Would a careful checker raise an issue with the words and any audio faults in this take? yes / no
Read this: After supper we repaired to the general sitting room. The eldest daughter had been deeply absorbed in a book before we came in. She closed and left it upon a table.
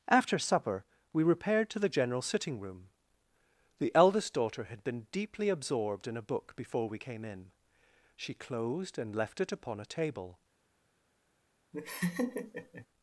yes